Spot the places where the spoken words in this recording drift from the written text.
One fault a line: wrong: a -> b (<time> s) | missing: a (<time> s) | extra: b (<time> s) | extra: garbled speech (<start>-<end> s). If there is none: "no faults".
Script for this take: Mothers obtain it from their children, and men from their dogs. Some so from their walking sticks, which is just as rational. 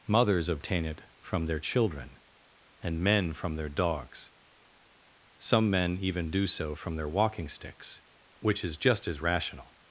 extra: men even do (5.7 s)